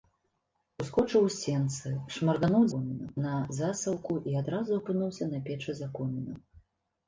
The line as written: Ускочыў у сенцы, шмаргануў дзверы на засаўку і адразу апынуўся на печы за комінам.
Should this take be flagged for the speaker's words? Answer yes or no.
yes